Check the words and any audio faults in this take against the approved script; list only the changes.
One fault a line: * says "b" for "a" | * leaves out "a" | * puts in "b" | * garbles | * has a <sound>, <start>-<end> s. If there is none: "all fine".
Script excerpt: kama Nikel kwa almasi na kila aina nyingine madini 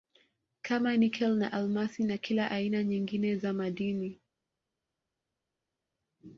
* says "na" for "kwa"
* puts in "za"